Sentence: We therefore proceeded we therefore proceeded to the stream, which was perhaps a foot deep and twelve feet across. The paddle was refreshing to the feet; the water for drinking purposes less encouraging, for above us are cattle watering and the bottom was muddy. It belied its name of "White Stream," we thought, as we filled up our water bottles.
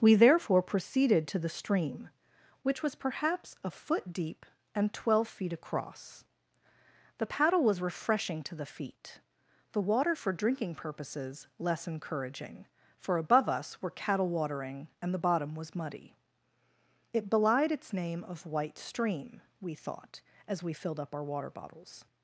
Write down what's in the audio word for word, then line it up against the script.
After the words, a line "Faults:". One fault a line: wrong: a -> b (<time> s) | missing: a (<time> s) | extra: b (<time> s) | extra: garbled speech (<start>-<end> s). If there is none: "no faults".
We therefore proceeded to the stream, which was perhaps a foot deep and twelve feet across. The paddle was refreshing to the feet; the water for drinking purposes less encouraging, for above us were cattle watering and the bottom was muddy. It belied its name of "White Stream," we thought, as we filled up our water bottles.
Faults:
missing: we therefore proceeded (1.3 s)
wrong: are -> were (13.8 s)